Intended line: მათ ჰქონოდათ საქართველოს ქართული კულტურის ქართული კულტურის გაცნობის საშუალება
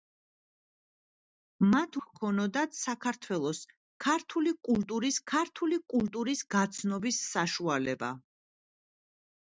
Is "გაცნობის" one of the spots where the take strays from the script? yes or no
no